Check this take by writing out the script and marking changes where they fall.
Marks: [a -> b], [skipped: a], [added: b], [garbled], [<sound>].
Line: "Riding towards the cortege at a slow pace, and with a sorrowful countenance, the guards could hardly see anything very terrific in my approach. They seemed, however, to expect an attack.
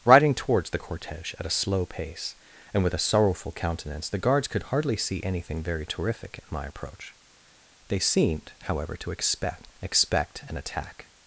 "Riding towards the cortege at a slow pace, and with a sorrowful countenance, the guards could hardly see anything very terrific in my approach. They seemed, however, to expect [added: expect] an attack.